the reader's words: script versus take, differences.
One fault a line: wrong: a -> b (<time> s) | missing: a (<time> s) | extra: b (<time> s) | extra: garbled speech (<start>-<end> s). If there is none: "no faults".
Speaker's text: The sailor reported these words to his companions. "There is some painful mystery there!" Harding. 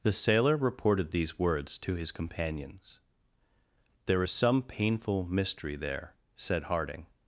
extra: said (6.3 s)